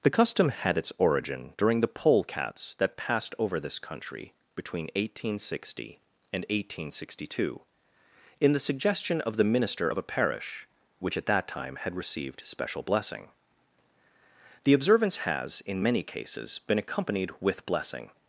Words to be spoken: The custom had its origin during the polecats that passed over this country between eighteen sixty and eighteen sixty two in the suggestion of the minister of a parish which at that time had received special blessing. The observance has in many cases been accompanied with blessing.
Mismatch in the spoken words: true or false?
false